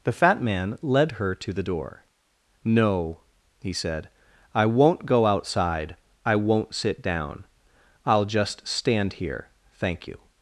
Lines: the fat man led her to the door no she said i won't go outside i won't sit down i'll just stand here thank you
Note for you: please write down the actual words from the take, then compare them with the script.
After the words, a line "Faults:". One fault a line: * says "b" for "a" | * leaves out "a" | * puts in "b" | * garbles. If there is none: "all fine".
the fat man led her to the door no he said i won't go outside i won't sit down i'll just stand here thank you
Faults:
* says "he" for "she"